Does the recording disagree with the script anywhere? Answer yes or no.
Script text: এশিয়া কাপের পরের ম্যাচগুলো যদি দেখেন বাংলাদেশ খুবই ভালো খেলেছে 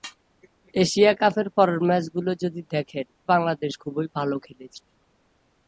no